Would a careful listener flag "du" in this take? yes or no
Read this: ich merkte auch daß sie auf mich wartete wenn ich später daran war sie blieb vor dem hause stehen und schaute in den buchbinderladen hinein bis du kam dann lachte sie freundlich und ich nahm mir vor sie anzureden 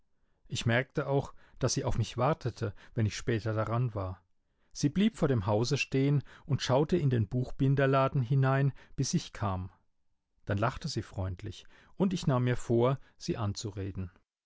yes